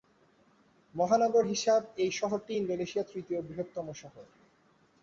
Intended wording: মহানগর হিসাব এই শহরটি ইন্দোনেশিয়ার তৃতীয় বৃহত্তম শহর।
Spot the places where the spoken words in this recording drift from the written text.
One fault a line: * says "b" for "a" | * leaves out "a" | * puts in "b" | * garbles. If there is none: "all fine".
all fine